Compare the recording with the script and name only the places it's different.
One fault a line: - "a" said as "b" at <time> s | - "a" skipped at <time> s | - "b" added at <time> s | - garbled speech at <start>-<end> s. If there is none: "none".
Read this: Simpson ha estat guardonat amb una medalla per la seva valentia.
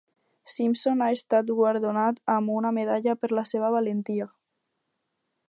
none